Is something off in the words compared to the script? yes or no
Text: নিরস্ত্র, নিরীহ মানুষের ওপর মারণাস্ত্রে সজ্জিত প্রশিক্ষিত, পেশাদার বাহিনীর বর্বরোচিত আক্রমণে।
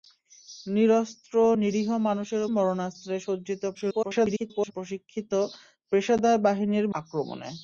yes